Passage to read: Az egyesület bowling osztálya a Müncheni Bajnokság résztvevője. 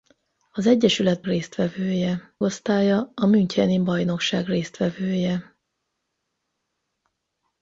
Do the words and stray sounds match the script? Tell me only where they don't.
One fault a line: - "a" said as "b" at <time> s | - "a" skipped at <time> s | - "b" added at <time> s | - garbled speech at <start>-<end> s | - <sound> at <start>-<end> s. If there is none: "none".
- "bowling" said as "résztvevője" at 1.2 s